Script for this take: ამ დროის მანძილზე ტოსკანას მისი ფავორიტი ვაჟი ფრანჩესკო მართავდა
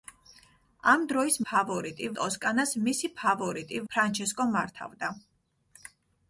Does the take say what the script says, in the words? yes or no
no